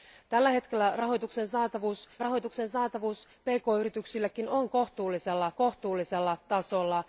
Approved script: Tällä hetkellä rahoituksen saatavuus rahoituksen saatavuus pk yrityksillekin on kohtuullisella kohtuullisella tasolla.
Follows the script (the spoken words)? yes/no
yes